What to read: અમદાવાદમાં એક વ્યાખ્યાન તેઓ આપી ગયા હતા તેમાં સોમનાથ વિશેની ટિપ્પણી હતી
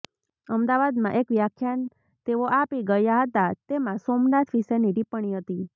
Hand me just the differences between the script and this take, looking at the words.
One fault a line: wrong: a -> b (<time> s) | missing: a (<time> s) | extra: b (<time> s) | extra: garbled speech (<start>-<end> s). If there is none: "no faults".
no faults